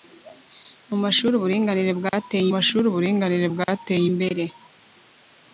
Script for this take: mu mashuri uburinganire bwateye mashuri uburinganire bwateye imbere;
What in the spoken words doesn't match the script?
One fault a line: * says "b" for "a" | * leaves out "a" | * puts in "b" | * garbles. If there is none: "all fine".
all fine